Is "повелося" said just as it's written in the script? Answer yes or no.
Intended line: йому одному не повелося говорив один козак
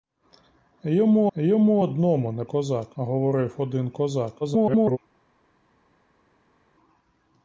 no